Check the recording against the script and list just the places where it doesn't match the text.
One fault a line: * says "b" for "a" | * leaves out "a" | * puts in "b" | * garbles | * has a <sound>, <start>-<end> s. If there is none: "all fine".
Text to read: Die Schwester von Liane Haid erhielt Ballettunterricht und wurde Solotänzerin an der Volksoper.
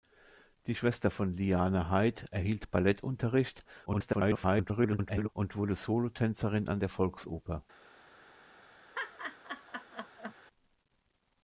* garbles
* has a laugh, 8.9-10.3 s